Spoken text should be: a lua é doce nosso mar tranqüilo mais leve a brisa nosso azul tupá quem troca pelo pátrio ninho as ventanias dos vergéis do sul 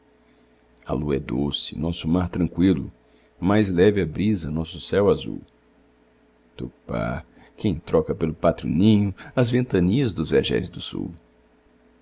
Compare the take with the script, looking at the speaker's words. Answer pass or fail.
fail